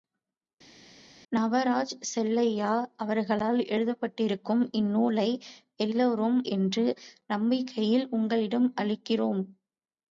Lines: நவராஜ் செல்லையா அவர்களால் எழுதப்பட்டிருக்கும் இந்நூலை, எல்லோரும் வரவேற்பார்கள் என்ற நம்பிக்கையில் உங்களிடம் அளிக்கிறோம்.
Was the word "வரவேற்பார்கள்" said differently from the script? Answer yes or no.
yes